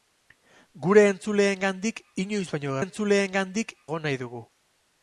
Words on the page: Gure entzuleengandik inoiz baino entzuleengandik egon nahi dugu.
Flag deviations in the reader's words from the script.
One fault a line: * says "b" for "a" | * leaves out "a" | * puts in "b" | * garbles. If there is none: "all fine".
all fine